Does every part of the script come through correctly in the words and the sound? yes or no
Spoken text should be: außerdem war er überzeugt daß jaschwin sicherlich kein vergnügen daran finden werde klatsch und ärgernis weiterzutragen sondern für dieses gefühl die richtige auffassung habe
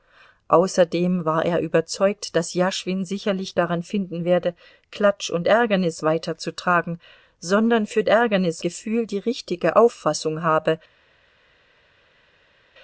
no